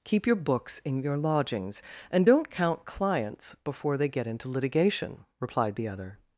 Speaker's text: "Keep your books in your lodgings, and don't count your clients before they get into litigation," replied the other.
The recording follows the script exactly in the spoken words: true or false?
false